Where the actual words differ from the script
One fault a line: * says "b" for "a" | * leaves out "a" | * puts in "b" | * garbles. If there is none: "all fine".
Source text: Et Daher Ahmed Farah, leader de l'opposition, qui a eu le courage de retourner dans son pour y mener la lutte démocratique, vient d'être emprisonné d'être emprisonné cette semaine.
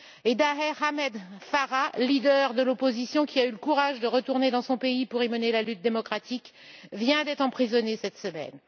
* puts in "pays"
* leaves out "d'être emprisonné"